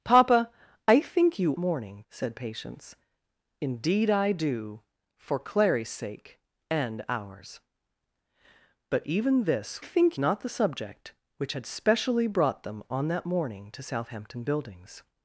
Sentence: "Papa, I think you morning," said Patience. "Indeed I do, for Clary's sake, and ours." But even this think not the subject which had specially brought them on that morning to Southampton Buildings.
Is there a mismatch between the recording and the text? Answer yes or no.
no